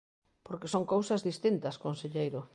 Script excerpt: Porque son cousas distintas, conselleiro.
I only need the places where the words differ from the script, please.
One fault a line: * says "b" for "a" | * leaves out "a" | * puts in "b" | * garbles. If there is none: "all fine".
all fine